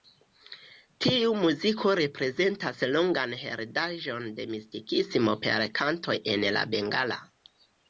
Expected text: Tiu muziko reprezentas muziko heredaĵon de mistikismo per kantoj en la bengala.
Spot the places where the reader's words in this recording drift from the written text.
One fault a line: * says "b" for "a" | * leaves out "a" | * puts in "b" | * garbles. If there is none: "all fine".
* says "longan" for "muziko"